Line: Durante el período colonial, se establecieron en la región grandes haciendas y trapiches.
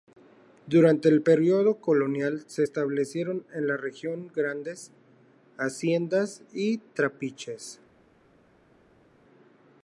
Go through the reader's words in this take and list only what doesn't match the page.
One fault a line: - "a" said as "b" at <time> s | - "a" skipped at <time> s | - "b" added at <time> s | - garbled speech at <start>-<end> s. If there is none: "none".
none